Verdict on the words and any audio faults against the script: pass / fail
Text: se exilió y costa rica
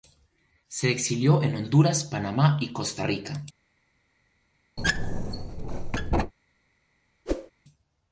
fail